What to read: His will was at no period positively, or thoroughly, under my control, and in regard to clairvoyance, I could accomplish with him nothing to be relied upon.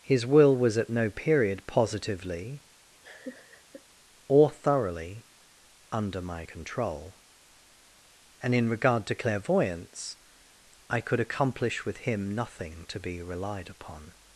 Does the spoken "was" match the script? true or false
true